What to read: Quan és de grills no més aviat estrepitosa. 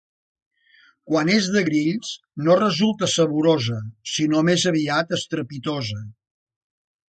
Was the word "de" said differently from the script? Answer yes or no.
no